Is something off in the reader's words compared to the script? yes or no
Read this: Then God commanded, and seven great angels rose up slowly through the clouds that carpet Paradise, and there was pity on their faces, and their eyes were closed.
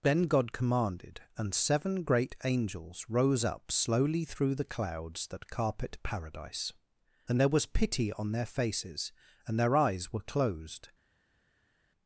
no